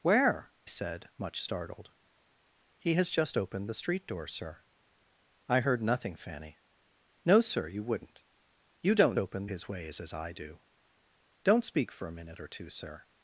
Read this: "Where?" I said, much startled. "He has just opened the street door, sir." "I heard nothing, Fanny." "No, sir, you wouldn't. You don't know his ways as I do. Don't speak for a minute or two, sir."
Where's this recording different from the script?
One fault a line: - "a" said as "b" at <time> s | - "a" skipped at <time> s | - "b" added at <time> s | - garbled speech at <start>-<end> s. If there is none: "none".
- "I" skipped at 0.5 s
- "know" said as "opened" at 9.2 s